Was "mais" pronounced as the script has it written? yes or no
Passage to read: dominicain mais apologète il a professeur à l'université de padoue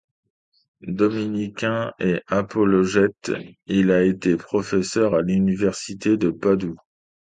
no